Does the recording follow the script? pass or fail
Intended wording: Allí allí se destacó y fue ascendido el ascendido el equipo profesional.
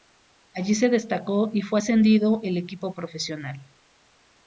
fail